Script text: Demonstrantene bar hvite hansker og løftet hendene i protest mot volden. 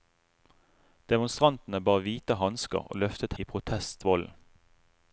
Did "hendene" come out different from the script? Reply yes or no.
yes